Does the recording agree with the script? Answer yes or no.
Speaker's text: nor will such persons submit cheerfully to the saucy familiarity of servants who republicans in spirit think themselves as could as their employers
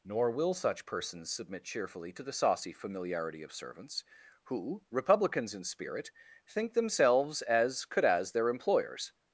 yes